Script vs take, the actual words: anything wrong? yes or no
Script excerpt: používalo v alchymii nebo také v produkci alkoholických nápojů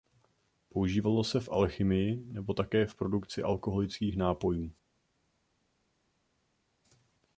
yes